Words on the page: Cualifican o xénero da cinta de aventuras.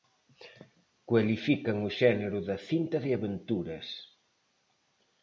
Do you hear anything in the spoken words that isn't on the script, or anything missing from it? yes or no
no